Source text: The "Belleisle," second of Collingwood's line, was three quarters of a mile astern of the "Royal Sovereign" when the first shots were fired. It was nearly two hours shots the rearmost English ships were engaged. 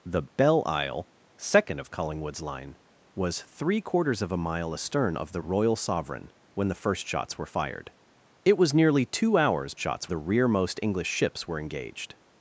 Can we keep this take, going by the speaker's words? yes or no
yes